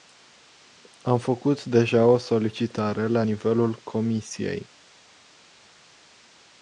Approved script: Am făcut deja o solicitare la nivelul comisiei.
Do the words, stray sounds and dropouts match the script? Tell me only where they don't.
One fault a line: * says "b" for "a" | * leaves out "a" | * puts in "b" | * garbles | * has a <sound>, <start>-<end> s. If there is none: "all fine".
all fine